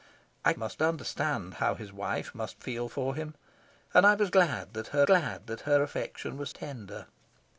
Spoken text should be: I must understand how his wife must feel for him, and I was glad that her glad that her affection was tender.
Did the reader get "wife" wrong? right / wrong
right